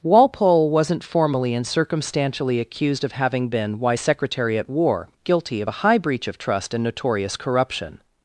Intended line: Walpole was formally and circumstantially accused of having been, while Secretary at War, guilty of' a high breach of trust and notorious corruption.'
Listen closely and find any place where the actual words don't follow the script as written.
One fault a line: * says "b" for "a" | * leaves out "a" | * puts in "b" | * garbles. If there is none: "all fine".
* says "wasn't" for "was"
* says "why" for "while"